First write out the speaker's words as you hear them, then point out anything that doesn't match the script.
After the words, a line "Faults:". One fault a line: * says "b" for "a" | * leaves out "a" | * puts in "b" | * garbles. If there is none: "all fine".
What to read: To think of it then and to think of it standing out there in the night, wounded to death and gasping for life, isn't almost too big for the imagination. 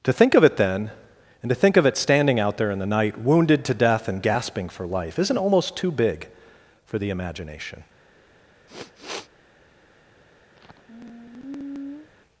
To think of it then and to think of it standing out there in the night, wounded to death and gasping for life, isn't almost too big for the imagination.
Faults:
all fine